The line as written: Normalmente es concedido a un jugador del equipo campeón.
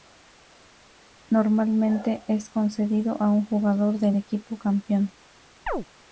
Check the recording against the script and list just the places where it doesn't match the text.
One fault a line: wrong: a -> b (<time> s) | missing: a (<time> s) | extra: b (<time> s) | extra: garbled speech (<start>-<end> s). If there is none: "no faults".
no faults